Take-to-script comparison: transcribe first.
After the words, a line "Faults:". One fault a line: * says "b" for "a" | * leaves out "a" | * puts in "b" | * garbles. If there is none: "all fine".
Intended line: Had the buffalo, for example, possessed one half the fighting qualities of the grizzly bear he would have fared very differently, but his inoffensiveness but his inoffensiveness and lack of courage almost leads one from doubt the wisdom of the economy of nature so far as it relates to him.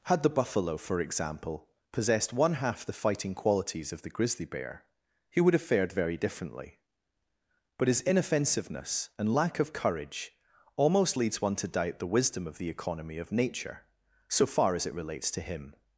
Had the buffalo, for example, possessed one half the fighting qualities of the grizzly bear he would have fared very differently, but his inoffensiveness and lack of courage almost leads one to doubt the wisdom of the economy of nature so far as it relates to him.
Faults:
* leaves out "but his inoffensiveness"
* says "to" for "from"